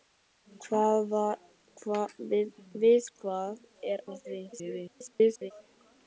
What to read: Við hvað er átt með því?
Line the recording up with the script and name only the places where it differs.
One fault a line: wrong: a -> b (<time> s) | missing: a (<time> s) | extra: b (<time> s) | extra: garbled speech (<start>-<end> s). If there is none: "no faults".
missing: átt (4.0 s)
extra: garbled speech (4.5-5.5 s)